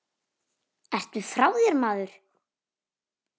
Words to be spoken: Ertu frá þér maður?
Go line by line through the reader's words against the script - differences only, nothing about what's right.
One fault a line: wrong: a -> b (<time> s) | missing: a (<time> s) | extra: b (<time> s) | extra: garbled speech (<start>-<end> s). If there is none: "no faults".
no faults